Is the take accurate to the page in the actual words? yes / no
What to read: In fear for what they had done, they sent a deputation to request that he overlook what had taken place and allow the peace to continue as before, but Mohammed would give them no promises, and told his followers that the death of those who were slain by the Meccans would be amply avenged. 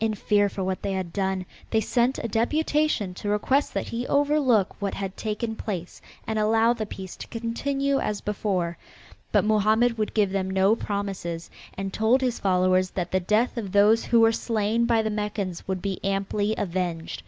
yes